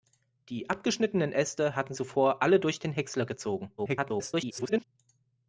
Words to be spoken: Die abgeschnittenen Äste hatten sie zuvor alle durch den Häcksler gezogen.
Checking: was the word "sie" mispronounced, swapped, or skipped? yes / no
yes